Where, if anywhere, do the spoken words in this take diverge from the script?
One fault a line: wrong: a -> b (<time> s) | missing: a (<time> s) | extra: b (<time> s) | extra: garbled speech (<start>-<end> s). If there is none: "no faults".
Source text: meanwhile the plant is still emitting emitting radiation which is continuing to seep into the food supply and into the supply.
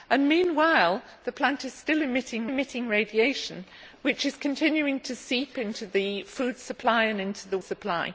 no faults